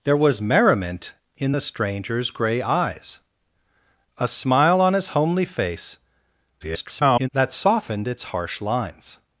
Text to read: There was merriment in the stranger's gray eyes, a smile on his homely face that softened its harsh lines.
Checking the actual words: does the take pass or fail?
fail